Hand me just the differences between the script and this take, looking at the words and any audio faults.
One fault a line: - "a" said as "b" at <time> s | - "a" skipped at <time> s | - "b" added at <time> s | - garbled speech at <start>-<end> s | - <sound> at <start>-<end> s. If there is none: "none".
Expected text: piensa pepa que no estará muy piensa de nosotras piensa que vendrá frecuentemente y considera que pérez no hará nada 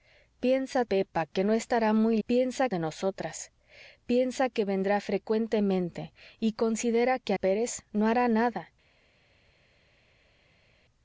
none